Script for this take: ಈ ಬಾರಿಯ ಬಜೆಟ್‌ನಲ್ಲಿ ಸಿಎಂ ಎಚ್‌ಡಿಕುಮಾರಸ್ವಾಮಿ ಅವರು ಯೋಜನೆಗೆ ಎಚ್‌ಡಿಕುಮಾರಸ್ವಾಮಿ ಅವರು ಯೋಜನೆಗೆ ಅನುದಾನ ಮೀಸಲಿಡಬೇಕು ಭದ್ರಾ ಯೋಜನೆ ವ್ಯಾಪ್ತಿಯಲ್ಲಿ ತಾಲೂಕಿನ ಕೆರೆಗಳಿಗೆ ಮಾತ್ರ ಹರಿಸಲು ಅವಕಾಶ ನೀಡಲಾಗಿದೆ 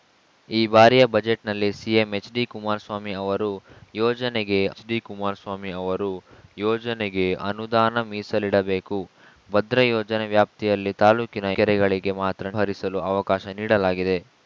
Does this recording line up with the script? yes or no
yes